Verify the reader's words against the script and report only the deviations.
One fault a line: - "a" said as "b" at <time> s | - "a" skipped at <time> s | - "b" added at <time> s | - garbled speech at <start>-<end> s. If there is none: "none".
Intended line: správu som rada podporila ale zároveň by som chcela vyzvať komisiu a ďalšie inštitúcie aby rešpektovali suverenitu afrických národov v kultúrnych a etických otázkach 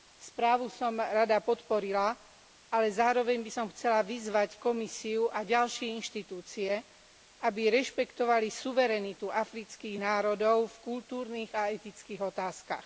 none